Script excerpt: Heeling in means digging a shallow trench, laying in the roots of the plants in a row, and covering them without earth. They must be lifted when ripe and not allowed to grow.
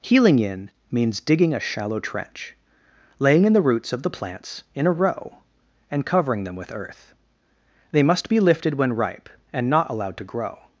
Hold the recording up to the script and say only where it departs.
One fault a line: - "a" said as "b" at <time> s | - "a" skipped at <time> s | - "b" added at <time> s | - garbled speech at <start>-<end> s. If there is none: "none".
- "without" said as "with" at 6.5 s